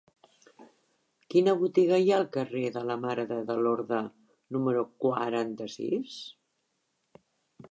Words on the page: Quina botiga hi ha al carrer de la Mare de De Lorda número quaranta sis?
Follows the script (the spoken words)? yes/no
yes